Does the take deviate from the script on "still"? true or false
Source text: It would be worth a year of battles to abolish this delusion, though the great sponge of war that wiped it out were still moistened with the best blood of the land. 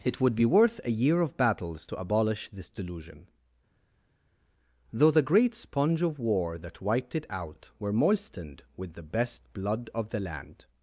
true